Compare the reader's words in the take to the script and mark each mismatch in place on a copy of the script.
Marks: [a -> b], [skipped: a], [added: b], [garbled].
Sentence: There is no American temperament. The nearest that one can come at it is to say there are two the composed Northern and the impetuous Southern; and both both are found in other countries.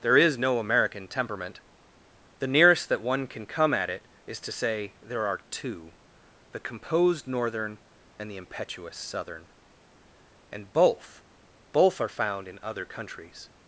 There is no American temperament. The nearest that one can come at it is to say there are two the composed Northern and the impetuous Southern; and both both are found in other countries.